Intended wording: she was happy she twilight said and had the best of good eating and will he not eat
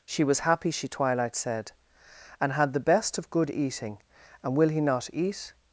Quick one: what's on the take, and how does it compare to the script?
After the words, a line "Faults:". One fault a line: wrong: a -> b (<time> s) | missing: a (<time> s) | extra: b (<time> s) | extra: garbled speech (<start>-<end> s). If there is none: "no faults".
she was happy she twilight said and had the best of good eating and will he not eat
Faults:
no faults